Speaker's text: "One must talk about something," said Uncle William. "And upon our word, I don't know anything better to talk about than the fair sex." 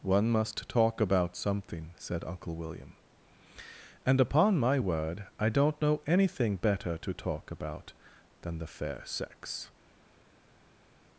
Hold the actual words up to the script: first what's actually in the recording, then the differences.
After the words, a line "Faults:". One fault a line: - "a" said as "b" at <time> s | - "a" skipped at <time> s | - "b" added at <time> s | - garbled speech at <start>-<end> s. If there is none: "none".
"One must talk about something," said Uncle William. "And upon my word, I don't know anything better to talk about than the fair sex."
Faults:
- "our" said as "my" at 4.6 s